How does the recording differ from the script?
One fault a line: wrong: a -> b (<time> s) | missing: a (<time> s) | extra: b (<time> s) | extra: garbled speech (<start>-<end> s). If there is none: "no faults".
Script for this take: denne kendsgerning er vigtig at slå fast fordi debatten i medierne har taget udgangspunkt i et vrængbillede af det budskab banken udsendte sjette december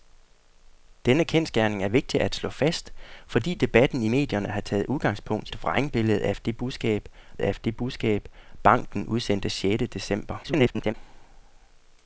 missing: i (5.5 s)
extra: af det budskab (7.4 s)
extra: garbled speech (10.4-10.9 s)